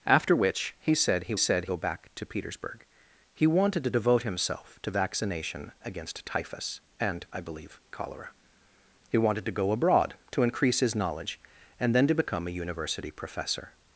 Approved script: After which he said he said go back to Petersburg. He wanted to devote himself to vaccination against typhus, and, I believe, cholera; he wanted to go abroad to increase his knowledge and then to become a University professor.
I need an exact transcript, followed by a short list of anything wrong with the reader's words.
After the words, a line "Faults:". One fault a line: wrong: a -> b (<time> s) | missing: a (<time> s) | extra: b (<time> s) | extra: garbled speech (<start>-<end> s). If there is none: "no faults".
After which he said he said go back to Petersburg. He wanted to devote himself to vaccination against typhus, and, I believe, cholera; he wanted to go abroad to increase his knowledge and then to become a University professor.
Faults:
no faults